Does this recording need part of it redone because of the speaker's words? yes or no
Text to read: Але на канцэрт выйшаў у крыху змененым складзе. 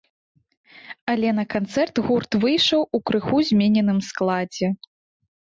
yes